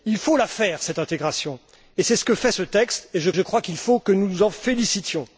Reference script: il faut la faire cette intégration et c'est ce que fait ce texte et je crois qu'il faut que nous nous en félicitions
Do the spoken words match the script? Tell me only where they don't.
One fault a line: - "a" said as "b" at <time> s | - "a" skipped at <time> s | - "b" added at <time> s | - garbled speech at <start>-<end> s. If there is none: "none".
- "je" added at 3.3 s